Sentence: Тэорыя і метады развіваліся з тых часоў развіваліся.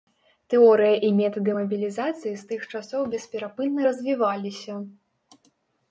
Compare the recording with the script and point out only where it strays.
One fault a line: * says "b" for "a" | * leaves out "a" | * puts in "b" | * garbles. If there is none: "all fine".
* says "мабілізацыі" for "развіваліся"
* puts in "бесперапынна"